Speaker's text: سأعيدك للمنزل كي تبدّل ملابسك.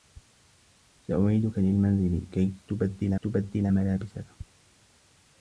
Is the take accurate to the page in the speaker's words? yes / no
no